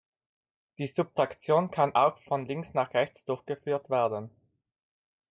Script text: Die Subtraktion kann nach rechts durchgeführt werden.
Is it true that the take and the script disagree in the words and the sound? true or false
true